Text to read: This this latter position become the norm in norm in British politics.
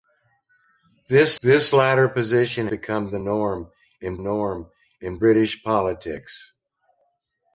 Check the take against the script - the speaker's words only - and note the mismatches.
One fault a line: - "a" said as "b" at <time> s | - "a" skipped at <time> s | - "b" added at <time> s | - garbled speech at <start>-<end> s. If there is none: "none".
none